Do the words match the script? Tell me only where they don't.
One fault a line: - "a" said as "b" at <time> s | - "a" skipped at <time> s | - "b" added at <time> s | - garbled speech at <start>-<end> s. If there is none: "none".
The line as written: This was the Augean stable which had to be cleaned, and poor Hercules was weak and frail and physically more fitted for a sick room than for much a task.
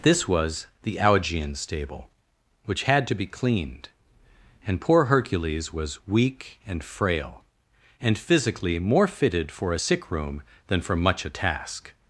none